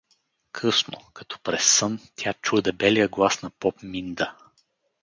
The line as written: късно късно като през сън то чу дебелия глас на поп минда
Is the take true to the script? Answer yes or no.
no